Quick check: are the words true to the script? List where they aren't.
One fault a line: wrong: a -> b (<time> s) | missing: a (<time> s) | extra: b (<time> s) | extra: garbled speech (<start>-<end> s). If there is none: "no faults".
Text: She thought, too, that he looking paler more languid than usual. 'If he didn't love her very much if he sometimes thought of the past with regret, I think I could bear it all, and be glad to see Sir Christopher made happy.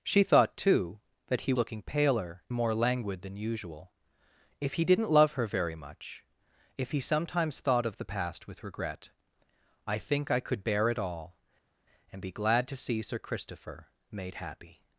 no faults